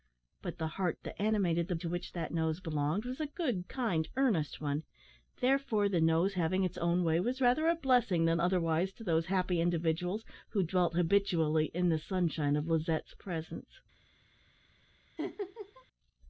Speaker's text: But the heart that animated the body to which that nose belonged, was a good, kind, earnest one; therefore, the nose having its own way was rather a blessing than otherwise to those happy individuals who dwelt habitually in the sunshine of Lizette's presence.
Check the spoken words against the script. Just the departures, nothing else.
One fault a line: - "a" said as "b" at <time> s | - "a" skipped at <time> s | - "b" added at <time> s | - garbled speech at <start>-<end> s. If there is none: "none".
- "body" skipped at 1.8 s